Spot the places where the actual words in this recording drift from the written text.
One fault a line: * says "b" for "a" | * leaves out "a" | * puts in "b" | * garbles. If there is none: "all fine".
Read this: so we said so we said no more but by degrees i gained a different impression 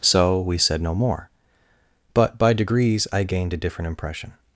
* leaves out "so we said"